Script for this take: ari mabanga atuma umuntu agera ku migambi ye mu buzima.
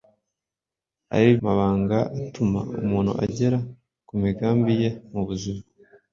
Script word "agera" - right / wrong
right